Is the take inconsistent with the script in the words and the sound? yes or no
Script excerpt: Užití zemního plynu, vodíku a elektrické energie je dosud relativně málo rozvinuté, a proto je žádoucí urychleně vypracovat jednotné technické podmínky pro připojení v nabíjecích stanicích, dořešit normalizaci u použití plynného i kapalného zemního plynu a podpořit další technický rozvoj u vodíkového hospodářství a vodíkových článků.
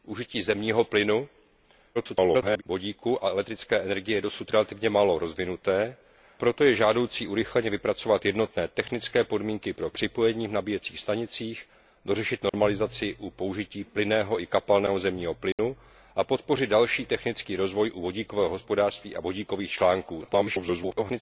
yes